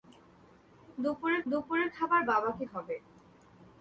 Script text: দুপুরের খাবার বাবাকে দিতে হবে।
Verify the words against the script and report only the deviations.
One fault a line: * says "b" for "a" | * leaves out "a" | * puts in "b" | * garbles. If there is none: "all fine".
* puts in "দুপুরের"
* leaves out "দিতে"